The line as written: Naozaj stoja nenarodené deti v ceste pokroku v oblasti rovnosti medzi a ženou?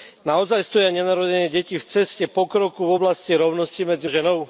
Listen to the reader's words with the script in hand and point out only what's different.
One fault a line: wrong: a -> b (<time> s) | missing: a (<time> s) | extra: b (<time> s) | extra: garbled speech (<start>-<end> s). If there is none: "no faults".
no faults